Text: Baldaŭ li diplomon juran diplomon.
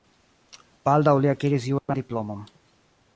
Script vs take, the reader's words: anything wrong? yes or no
yes